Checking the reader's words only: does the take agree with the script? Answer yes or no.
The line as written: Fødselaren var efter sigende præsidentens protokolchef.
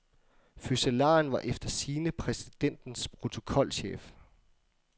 yes